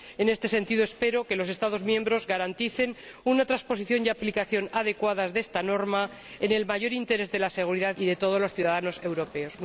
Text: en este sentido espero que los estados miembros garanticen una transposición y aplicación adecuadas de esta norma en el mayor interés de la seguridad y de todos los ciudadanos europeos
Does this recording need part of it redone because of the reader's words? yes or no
no